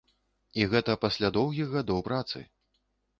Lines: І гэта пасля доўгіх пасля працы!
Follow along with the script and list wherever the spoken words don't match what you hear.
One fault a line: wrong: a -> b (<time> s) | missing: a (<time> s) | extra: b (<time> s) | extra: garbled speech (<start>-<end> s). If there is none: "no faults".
wrong: пасля -> гадоў (1.8 s)